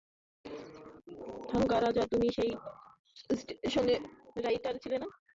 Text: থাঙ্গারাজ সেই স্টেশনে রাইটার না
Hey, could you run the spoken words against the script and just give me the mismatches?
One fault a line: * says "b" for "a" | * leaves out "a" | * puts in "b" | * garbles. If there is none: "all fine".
* puts in "তুমি"
* puts in "ছিলে"